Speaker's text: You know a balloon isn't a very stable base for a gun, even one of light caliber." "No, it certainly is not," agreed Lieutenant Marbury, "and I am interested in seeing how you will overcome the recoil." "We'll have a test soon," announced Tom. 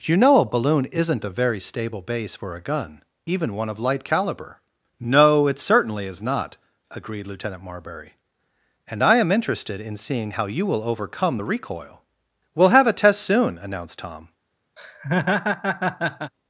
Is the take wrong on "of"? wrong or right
right